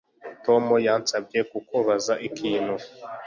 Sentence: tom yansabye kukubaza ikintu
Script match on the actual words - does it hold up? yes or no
yes